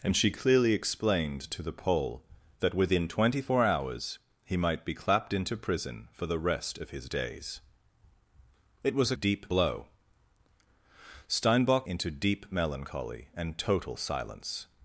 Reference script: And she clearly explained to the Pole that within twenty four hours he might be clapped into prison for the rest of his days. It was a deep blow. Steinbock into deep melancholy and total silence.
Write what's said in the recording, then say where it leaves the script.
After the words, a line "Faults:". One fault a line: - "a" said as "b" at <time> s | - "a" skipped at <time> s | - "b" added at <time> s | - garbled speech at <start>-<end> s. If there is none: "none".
And she clearly explained to the Pole that within twenty four hours he might be clapped into prison for the rest of his days. It was a deep blow. Steinbock into deep melancholy and total silence.
Faults:
none